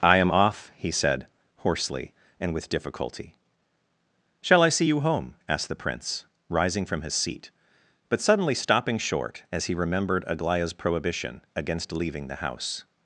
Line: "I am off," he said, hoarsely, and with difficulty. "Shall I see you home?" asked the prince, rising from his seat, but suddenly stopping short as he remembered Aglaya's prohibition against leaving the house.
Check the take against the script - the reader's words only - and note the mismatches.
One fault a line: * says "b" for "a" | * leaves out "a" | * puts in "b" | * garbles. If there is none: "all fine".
all fine